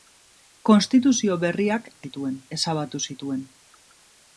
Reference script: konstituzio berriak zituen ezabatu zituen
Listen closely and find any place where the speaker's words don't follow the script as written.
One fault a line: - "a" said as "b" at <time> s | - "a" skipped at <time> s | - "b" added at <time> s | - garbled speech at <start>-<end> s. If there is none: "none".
none